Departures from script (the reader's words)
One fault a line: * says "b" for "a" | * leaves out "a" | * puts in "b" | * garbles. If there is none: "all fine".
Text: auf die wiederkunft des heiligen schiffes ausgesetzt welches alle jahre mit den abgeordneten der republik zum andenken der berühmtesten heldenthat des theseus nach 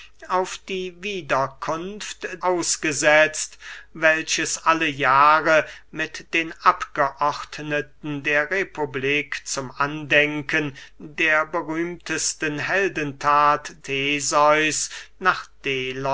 * leaves out "des heiligen schiffes"
* leaves out "des"